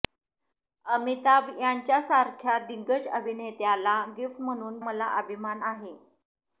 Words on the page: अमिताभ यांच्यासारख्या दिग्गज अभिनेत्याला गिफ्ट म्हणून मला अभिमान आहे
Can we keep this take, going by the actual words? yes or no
yes